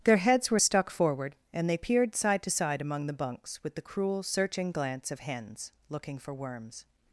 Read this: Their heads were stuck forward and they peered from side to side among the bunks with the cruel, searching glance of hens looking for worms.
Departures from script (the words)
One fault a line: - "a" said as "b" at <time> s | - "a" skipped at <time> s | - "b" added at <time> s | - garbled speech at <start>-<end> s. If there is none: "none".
- "from" skipped at 2.1 s